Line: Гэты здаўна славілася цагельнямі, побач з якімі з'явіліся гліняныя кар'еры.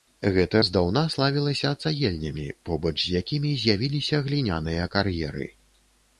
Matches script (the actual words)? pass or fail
pass